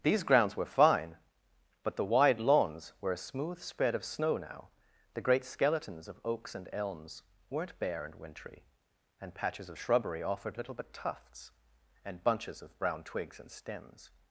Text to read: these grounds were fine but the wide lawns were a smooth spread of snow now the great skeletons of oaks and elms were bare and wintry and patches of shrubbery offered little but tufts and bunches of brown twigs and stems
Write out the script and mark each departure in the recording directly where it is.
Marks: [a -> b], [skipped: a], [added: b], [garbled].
these grounds were fine but the wide lawns were a smooth spread of snow now the great skeletons of oaks and elms [were -> weren't] bare and wintry and patches of shrubbery offered little but tufts and bunches of brown twigs and stems